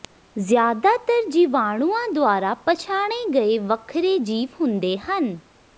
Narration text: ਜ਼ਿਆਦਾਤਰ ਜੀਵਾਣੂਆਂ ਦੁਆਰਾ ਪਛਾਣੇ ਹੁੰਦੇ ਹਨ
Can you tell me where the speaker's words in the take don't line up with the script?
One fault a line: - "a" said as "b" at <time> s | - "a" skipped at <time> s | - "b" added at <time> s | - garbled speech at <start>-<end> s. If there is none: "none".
- "ਗਏ ਵੱਖਰੇ ਜੀਵ" added at 3.3 s